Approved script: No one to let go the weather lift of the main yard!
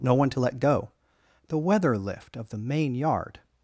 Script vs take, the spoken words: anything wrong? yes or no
no